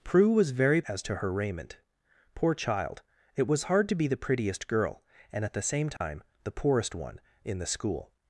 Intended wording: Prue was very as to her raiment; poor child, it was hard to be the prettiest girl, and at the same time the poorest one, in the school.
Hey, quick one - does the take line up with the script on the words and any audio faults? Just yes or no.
no